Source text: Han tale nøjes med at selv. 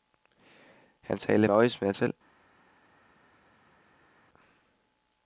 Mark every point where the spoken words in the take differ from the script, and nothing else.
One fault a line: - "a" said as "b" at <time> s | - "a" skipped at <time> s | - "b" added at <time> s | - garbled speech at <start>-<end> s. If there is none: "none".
none